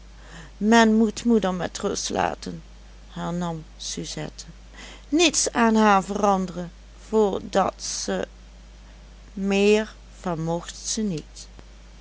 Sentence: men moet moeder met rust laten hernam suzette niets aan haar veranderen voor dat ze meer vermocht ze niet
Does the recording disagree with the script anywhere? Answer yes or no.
no